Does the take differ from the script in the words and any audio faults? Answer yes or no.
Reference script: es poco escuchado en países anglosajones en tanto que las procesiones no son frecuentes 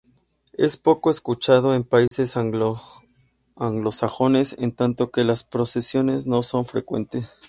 yes